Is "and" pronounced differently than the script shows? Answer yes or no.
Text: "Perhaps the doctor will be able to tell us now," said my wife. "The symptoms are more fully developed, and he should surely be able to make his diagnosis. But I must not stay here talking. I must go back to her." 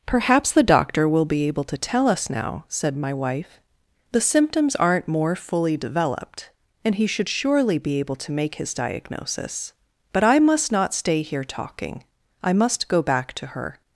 no